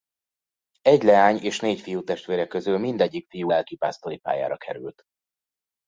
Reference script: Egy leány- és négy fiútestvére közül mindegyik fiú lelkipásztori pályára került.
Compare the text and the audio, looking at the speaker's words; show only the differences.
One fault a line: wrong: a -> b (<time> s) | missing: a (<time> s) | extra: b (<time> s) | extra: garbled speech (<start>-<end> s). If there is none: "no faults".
no faults